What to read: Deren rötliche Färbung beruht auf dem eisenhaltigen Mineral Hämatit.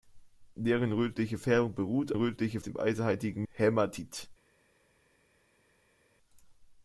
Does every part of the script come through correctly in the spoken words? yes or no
no